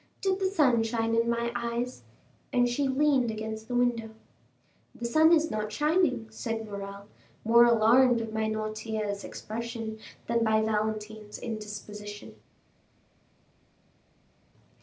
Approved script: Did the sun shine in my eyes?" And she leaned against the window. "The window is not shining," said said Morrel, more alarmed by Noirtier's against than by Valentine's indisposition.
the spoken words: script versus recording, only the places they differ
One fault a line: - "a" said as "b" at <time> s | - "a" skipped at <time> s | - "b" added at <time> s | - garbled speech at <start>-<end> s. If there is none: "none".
- "window" said as "sun" at 5.0 s
- "said" skipped at 6.7 s
- "against" said as "expression" at 9.2 s